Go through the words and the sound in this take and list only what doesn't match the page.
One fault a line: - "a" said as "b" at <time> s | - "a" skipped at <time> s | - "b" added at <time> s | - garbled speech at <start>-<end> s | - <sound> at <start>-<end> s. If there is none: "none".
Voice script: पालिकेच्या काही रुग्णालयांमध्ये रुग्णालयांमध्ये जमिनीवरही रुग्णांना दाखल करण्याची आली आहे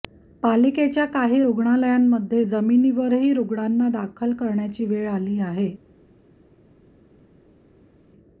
- "रुग्णालयांमध्ये" skipped at 2.4 s
- "वेळ" added at 4.8 s